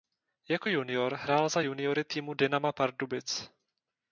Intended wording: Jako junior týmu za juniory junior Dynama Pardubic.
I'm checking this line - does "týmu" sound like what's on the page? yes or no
no